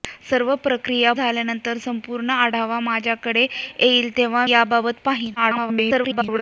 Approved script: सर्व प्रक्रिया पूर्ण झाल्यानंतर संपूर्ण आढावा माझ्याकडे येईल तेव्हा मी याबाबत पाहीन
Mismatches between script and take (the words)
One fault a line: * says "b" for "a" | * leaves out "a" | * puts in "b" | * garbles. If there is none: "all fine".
* leaves out "पूर्ण"
* leaves out "मी"
* garbles